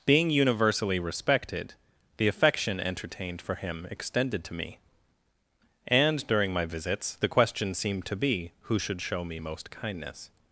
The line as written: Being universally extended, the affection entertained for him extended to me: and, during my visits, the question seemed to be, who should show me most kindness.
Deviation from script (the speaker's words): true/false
true